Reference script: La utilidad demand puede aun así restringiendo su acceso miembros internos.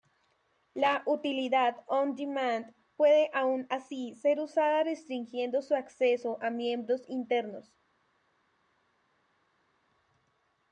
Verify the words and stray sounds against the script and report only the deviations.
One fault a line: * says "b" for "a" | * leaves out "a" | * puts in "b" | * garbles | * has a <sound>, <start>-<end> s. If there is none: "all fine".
* puts in "on"
* puts in "ser usada"
* puts in "a"